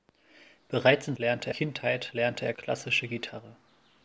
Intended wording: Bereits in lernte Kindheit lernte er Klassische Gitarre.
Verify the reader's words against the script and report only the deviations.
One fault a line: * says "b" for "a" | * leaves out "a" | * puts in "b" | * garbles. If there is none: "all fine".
all fine